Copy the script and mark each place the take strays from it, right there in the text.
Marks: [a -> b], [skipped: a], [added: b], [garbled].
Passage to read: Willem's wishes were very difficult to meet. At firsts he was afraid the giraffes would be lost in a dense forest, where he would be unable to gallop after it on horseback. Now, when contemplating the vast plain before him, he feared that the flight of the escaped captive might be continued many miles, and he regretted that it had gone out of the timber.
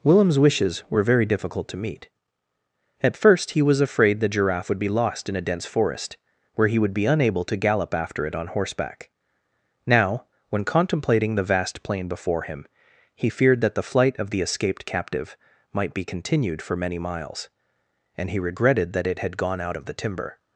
Willem's wishes were very difficult to meet. At [firsts -> first] he was afraid the [giraffes -> giraffe] would be lost in a dense forest, where he would be unable to gallop after it on horseback. Now, when contemplating the vast plain before him, he feared that the flight of the escaped captive might be continued [added: for] many miles, and he regretted that it had gone out of the timber.